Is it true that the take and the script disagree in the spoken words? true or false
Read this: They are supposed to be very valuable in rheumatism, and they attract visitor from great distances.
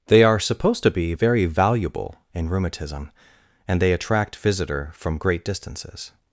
false